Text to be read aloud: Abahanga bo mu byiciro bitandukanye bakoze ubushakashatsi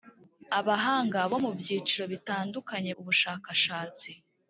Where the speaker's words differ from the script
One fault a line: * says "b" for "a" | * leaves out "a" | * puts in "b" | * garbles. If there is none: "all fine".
* leaves out "bakoze"